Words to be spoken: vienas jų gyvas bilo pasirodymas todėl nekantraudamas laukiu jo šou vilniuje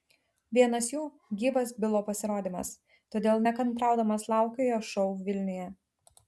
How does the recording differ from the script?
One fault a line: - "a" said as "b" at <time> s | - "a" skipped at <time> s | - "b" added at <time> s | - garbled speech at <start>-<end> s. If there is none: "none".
none